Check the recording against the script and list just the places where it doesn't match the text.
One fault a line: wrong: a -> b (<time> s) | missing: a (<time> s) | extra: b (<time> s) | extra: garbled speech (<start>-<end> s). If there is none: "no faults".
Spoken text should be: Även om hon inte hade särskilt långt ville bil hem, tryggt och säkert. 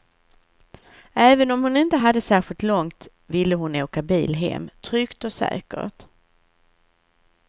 extra: hon åka (3.5 s)